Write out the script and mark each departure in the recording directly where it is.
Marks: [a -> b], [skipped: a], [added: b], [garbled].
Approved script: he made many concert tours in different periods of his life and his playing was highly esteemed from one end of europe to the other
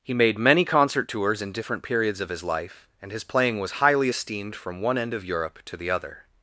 he made many concert tours in different periods of his life and his playing was highly esteemed from one end of europe to the other